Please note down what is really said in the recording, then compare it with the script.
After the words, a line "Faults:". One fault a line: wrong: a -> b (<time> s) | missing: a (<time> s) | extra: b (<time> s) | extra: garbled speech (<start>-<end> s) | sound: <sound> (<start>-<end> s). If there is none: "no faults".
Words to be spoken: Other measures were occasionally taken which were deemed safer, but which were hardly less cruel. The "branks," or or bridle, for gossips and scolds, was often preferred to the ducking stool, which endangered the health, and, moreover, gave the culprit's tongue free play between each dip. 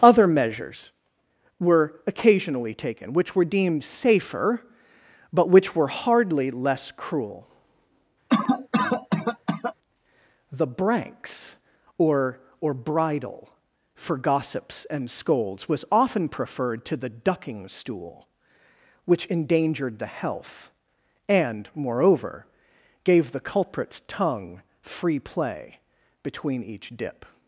Other measures were occasionally taken which were deemed safer, but which were hardly less cruel. The "branks," or or bridle, for gossips and scolds, was often preferred to the ducking stool, which endangered the health, and, moreover, gave the culprit's tongue free play between each dip.
Faults:
sound: cough (8.3-9.7 s)